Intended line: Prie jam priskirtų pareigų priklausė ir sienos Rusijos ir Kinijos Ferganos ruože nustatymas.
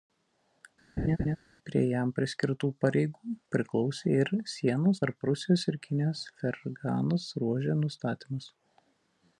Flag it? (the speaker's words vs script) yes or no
yes